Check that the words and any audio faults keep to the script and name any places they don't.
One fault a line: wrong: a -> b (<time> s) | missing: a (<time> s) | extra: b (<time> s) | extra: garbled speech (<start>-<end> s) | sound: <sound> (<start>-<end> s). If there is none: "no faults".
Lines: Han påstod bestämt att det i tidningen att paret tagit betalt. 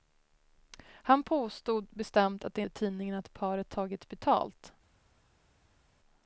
no faults